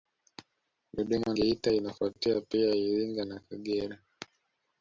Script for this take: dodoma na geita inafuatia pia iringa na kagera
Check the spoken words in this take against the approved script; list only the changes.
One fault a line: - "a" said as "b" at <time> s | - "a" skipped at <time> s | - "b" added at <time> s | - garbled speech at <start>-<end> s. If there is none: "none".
- "na" skipped at 1.3 s